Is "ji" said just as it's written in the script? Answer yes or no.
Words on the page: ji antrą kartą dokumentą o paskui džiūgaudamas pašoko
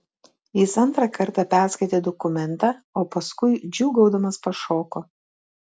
no